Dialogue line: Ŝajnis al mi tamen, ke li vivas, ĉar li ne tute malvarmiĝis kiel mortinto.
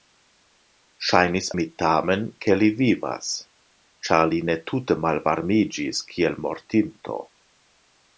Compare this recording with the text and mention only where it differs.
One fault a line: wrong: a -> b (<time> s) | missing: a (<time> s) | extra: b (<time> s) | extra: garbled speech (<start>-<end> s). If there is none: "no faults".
missing: al (1.5 s)